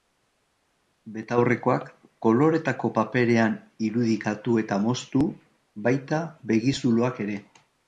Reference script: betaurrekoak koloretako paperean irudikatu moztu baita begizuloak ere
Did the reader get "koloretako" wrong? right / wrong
right